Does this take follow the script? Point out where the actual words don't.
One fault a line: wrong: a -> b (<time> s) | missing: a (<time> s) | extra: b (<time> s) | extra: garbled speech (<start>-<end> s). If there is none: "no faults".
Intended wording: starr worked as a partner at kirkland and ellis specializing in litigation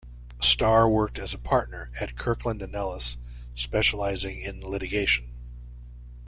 no faults